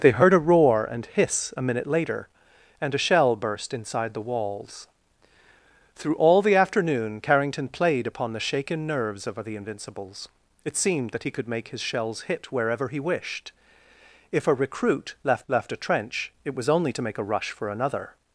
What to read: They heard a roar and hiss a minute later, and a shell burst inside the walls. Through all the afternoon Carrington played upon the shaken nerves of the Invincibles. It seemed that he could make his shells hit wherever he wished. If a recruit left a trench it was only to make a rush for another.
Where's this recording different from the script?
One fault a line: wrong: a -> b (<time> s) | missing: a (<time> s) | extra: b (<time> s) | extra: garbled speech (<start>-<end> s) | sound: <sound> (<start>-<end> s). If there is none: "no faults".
extra: left (15.5 s)